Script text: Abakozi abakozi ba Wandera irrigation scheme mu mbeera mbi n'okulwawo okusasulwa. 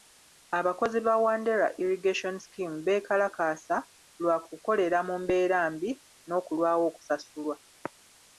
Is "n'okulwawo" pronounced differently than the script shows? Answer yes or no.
no